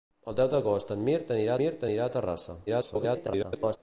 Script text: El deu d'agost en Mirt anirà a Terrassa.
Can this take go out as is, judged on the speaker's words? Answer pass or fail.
fail